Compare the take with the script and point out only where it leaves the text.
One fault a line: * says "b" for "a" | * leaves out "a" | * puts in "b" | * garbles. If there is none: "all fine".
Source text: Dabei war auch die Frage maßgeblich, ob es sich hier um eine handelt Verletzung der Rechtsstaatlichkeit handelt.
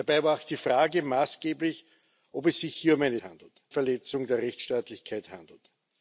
all fine